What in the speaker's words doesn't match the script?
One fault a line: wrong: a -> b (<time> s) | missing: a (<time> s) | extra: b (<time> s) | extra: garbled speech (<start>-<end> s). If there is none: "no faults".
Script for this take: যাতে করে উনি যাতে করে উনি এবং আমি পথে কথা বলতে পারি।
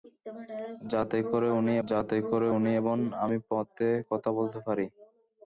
no faults